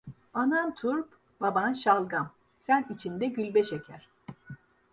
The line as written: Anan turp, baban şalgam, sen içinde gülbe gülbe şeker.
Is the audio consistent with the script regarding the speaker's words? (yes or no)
no